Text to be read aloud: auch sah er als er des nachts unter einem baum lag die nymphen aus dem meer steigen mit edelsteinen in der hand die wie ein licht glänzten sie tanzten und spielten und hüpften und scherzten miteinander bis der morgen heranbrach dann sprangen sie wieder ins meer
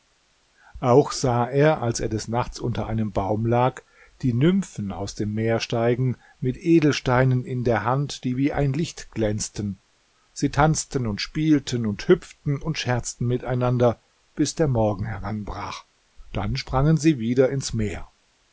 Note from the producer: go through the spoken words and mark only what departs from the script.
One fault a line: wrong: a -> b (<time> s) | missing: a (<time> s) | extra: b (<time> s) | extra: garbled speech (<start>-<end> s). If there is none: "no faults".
no faults